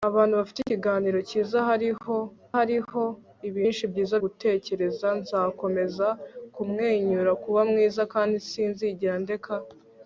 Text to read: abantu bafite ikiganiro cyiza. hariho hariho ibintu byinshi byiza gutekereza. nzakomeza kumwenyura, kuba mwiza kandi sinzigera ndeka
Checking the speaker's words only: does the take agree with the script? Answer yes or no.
yes